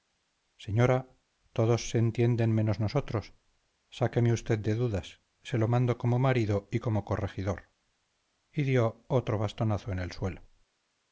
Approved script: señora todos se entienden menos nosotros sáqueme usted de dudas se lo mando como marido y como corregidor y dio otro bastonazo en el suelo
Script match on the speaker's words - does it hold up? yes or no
yes